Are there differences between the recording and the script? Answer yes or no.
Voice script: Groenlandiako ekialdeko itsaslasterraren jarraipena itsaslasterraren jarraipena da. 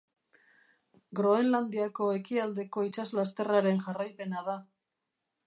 yes